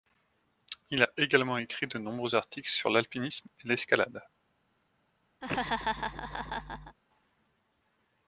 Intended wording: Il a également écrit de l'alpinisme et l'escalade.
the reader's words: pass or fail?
fail